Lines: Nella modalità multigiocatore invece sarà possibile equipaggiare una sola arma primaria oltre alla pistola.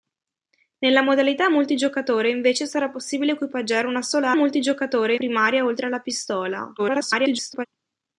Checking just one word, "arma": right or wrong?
wrong